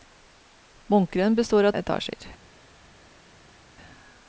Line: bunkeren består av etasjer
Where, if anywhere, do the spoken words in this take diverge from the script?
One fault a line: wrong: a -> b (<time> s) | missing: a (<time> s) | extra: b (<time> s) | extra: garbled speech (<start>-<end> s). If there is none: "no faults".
no faults